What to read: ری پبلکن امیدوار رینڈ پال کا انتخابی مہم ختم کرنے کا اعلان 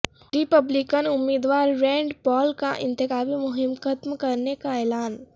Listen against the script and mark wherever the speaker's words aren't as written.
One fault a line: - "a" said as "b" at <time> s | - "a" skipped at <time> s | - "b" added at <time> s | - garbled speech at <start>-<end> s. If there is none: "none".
none